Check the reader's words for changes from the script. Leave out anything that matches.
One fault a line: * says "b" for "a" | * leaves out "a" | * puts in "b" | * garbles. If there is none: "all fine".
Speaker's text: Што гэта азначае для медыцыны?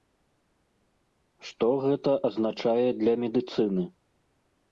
all fine